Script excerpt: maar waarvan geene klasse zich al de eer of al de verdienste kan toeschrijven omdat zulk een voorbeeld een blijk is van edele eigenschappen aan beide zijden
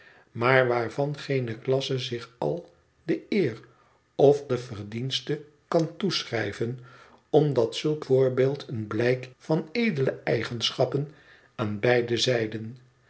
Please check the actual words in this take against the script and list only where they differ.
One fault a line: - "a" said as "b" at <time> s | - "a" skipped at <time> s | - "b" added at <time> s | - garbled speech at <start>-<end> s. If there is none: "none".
- "al" skipped at 4.4 s
- "een" skipped at 8.0 s
- "is" skipped at 9.3 s